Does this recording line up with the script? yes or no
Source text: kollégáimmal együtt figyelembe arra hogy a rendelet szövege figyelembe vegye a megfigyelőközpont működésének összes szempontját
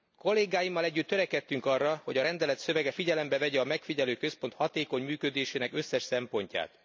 no